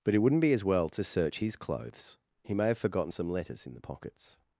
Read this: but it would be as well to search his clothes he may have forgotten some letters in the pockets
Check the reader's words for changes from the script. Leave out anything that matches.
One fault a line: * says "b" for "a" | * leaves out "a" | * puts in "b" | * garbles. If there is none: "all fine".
* says "wouldn't" for "would"